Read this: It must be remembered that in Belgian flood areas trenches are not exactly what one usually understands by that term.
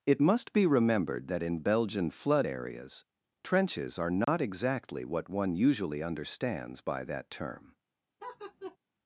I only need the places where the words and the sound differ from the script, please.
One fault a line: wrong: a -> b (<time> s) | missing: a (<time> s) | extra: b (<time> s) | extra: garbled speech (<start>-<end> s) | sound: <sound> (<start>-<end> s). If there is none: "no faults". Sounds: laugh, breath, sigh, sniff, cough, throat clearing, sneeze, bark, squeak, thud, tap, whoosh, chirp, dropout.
sound: dropout (4.2-4.3 s)
sound: laugh (8.2-8.8 s)